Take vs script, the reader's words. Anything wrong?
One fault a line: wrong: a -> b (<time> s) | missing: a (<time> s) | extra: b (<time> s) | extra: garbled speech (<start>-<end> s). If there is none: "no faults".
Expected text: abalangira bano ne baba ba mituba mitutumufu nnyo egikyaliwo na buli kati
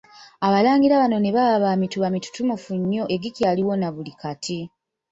no faults